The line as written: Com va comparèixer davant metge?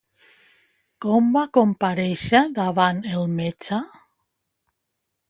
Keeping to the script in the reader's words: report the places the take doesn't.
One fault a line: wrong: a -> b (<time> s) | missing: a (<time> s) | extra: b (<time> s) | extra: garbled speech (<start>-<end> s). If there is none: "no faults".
extra: el (3.1 s)